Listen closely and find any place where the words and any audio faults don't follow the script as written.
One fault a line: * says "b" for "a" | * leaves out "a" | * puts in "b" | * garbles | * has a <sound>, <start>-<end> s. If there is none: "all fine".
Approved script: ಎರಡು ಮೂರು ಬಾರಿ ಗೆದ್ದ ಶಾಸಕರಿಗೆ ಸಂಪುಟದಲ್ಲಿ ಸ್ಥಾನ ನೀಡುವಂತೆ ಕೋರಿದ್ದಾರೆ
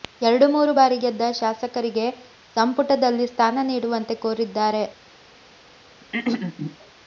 * has a throat clearing, 6.0-6.8 s